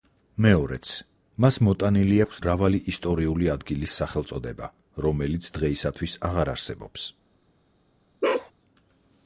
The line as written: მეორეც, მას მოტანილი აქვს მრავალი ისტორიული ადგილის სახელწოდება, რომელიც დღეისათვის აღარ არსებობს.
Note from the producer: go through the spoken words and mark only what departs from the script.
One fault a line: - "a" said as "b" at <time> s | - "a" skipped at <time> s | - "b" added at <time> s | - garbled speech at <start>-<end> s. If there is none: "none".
none